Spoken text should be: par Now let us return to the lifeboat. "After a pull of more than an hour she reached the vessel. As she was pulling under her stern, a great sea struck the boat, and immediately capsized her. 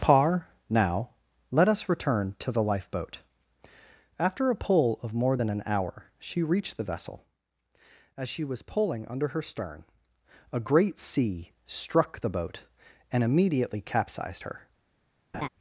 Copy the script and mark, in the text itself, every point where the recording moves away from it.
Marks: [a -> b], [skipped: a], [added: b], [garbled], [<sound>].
par Now let us return to the lifeboat. "After a pull of more than an hour she reached the vessel. As she was pulling under her stern, a great sea struck the boat, and immediately capsized her. [laugh]